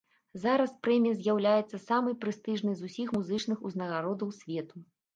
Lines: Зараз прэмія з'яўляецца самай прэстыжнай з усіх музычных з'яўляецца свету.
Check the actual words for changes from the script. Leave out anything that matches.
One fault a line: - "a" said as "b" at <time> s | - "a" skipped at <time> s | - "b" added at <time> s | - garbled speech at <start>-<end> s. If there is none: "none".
- "з'яўляецца" said as "узнагародаў" at 3.7 s